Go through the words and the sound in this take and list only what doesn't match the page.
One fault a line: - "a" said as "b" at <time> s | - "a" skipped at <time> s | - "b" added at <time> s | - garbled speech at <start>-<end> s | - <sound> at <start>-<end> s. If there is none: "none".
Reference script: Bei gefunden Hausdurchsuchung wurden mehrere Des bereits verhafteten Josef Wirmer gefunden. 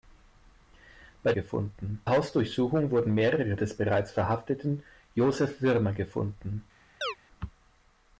- chirp at 7.0-7.2 s